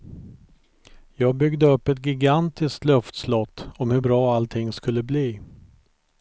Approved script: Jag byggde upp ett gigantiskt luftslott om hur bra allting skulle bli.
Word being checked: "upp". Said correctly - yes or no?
yes